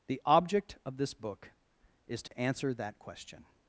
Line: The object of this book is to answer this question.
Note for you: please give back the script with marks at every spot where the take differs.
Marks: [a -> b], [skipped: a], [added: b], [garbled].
The object of this book is to answer [this -> that] question.